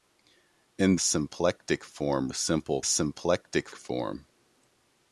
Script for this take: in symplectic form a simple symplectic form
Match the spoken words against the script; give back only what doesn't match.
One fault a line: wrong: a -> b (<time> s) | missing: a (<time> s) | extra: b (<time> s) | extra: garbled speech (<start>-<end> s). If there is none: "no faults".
no faults